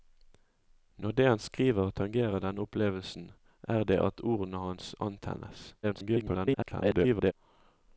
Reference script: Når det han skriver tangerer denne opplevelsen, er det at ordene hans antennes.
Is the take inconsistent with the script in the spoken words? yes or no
yes